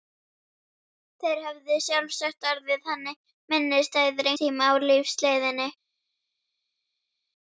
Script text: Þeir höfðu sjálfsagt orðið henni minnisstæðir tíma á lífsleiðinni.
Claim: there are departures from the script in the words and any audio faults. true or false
false